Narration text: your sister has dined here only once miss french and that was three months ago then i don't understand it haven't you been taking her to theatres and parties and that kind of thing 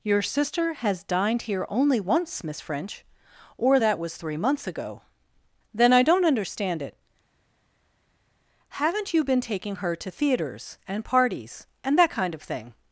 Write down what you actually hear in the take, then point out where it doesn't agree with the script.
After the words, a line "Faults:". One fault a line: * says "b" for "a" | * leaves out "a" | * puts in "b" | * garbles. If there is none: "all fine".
your sister has dined here only once miss french or that was three months ago then i don't understand it haven't you been taking her to theatres and parties and that kind of thing
Faults:
* says "or" for "and"